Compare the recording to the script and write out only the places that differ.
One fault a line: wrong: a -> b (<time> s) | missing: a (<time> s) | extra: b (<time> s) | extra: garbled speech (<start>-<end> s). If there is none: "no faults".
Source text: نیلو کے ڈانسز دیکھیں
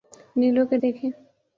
missing: ڈانسز (0.8 s)